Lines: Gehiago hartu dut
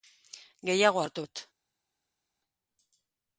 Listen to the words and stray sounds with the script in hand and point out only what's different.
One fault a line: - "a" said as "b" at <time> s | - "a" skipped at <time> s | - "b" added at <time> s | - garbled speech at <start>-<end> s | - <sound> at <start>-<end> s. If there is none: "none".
none